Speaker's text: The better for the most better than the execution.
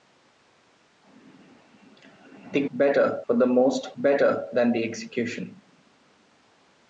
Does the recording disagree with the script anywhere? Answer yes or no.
no